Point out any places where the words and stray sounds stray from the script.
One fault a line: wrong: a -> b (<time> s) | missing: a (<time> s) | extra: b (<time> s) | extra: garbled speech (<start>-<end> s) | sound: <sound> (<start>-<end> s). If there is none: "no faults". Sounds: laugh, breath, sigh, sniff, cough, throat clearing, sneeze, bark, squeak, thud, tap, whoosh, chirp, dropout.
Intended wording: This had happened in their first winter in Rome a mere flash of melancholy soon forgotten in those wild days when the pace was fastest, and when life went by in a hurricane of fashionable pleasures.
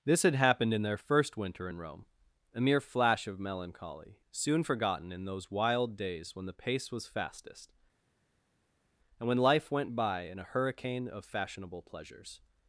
no faults